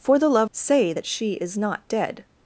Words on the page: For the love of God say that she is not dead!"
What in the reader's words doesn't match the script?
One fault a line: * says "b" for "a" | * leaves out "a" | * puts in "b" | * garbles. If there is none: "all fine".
* leaves out "of God"